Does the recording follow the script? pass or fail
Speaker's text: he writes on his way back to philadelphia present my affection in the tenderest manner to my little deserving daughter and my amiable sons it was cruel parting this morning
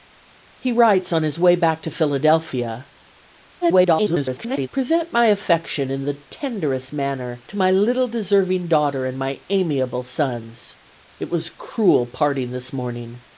fail